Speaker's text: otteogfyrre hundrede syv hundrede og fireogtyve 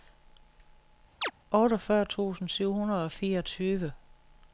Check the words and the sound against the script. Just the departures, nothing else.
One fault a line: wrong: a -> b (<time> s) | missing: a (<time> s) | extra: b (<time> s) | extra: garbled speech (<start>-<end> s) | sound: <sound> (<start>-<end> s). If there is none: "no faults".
sound: chirp (1.2-1.3 s)
wrong: hundrede -> tusind (2.0 s)